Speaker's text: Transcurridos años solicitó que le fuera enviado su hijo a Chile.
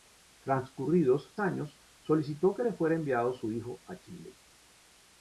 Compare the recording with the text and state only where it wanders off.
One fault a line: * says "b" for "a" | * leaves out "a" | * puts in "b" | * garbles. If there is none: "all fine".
all fine